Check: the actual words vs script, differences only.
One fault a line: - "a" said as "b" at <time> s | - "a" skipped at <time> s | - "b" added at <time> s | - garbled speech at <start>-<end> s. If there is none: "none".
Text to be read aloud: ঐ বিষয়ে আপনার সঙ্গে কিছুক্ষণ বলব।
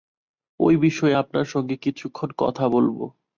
- "কথা" added at 2.4 s